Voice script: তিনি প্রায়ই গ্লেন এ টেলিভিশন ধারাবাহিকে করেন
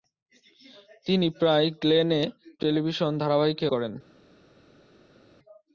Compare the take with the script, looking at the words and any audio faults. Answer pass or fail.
pass